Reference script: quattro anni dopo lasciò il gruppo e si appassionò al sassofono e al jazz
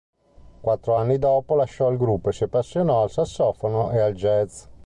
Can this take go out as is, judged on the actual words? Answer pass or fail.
pass